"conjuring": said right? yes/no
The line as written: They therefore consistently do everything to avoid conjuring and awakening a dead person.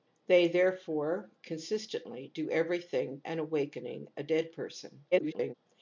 no